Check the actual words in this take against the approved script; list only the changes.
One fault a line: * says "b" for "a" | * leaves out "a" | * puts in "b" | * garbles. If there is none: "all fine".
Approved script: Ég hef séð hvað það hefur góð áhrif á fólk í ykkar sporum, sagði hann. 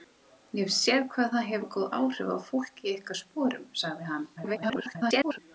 * garbles